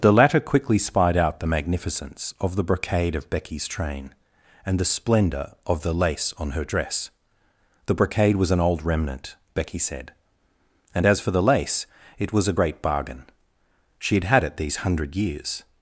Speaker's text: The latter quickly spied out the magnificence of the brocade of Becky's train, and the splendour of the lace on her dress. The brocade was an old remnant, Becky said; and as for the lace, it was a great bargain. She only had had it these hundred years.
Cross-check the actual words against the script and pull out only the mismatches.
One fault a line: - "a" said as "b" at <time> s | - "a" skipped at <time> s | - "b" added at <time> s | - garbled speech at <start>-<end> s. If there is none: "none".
- "only" skipped at 14.1 s